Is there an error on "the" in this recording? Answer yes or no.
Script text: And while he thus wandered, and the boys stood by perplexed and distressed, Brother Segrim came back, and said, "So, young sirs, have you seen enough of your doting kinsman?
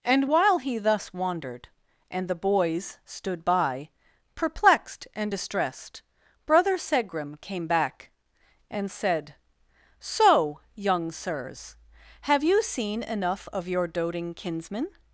no